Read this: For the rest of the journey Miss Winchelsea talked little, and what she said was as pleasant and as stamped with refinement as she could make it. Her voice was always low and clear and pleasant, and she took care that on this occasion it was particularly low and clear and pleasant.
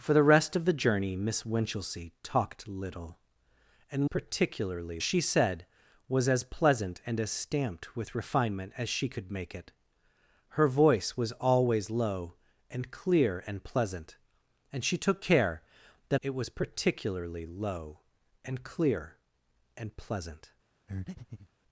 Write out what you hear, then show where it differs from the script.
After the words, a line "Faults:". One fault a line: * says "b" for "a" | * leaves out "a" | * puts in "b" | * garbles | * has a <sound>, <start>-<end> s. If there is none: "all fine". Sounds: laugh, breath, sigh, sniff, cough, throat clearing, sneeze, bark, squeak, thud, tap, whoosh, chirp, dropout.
For the rest of the journey Miss Winchelsea talked little, and particularly she said was as pleasant and as stamped with refinement as she could make it. Her voice was always low and clear and pleasant, and she took care that it was particularly low and clear and pleasant.
Faults:
* says "particularly" for "what"
* leaves out "on this occasion"
* has a breath, 20.9-21.5 s